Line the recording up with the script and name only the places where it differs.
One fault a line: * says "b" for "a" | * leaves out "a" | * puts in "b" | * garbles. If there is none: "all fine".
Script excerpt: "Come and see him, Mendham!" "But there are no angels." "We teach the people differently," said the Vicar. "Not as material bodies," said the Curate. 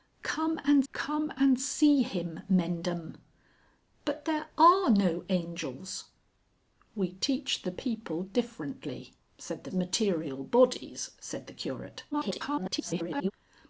* puts in "come and"
* leaves out "Vicar Not as"
* garbles